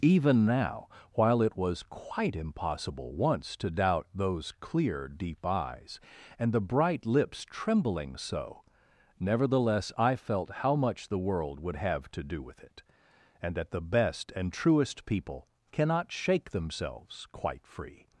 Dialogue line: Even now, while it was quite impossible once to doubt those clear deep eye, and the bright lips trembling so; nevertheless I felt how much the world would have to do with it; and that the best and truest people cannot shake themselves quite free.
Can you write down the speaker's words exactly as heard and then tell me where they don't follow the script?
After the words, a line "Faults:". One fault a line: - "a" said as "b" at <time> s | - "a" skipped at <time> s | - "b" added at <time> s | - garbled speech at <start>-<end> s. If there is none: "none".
Even now, while it was quite impossible once to doubt those clear deep eyes, and the bright lips trembling so; nevertheless I felt how much the world would have to do with it; and that the best and truest people cannot shake themselves quite free.
Faults:
- "eye" said as "eyes" at 5.5 s